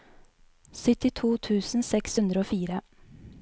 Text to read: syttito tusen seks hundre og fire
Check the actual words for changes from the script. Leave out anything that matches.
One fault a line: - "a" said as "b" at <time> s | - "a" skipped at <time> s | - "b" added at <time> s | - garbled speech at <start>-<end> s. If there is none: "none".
none